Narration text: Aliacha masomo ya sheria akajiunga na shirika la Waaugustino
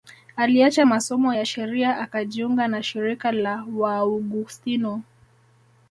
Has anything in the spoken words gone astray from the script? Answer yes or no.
no